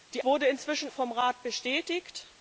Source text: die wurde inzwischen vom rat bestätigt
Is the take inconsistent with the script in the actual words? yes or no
no